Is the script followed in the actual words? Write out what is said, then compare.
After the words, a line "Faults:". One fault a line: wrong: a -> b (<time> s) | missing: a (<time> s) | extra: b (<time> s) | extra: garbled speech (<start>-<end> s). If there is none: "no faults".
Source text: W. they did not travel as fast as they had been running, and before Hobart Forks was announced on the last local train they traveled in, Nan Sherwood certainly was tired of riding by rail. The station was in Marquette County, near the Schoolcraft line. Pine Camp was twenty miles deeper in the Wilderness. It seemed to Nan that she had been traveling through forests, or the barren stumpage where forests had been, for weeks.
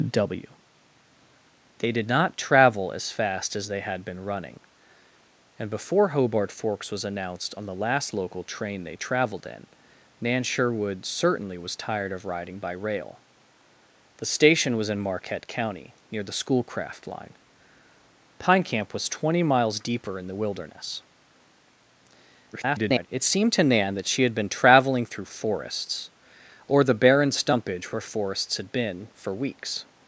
W. they did not travel as fast as they had been running, and before Hobart Forks was announced on the last local train they traveled in, Nan Sherwood certainly was tired of riding by rail. The station was in Marquette County, near the Schoolcraft line. Pine Camp was twenty miles deeper in the Wilderness. [garbled] It seemed to Nan that she had been traveling through forests, or the barren stumpage where forests had been, for weeks.
Faults:
extra: garbled speech (22.5-23.1 s)